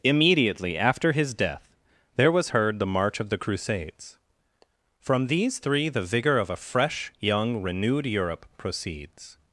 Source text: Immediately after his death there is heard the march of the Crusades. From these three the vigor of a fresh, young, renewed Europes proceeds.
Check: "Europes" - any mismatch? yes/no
yes